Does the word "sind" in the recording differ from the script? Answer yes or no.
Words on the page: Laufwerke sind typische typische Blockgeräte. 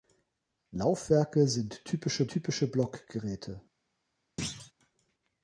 no